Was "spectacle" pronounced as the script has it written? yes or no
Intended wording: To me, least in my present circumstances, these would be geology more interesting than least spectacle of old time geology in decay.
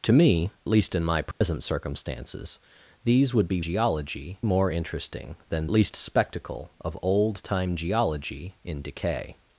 yes